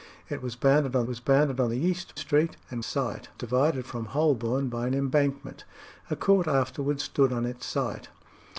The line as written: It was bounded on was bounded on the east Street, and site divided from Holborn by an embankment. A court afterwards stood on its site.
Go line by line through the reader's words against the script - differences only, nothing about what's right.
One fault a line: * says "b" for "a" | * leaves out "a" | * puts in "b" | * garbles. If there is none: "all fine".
all fine